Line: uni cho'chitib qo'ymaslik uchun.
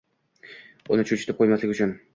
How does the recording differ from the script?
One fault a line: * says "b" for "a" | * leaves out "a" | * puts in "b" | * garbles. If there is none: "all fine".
all fine